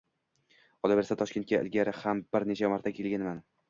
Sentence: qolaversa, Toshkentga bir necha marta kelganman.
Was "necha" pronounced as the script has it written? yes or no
yes